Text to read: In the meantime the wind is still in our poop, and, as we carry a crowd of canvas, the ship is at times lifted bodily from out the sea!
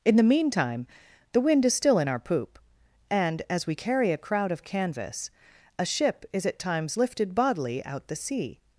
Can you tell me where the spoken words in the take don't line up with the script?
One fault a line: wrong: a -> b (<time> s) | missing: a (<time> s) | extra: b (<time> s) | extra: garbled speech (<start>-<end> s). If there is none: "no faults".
wrong: the -> a (5.8 s)
missing: from (7.8 s)